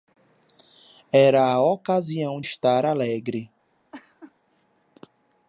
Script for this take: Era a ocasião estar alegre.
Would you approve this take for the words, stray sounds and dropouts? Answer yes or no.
no